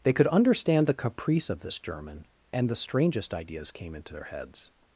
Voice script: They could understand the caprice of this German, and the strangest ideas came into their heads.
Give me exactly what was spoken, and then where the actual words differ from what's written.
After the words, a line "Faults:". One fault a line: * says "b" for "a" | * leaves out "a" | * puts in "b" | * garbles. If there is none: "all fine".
They could understand the caprice of this German, and the strangest ideas came into their heads.
Faults:
all fine